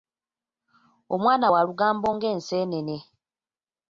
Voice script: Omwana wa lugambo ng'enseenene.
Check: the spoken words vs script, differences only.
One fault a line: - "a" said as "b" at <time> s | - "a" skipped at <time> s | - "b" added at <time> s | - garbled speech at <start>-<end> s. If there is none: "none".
none